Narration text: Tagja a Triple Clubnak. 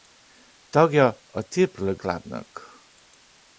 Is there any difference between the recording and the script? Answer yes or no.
no